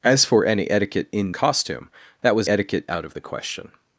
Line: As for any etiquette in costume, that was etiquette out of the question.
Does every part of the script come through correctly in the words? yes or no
yes